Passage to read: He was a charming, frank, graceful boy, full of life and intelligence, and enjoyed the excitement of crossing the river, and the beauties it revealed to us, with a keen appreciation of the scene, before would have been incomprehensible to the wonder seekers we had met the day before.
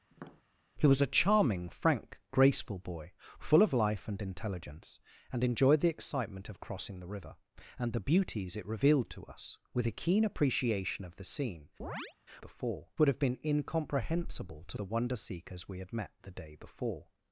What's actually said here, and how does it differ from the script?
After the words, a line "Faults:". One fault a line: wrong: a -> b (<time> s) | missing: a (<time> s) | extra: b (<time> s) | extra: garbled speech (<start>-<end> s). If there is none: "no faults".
He was a charming, frank, graceful boy, full of life and intelligence, and enjoyed the excitement of crossing the river, and the beauties it revealed to us, with a keen appreciation of the scene, before would have been incomprehensible to the wonder seekers we had met the day before.
Faults:
no faults